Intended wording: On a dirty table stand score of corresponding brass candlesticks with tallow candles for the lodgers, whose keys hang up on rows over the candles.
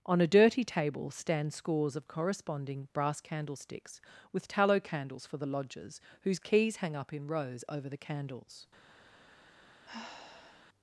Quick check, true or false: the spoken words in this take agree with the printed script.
false